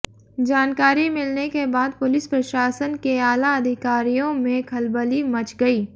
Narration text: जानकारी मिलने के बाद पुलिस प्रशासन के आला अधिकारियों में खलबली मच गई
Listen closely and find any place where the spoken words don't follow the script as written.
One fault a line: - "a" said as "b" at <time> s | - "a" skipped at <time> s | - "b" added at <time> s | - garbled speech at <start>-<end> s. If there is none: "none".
none